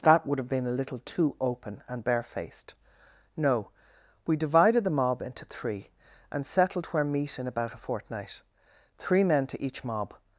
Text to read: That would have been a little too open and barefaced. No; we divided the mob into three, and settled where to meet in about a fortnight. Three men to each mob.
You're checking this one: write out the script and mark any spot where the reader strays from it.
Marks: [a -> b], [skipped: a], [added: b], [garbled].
That would have been a little too open and barefaced. No; we divided the mob into three, and settled where [skipped: to] meet in about a fortnight. Three men to each mob.